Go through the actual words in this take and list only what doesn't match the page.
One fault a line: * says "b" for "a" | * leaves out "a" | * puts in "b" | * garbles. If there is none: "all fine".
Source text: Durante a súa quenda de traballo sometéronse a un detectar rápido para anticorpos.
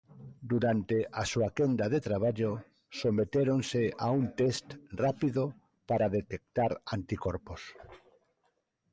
* says "test" for "detectar"
* puts in "detectar"